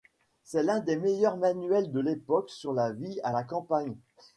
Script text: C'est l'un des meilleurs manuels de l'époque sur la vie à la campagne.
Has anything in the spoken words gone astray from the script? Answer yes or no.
no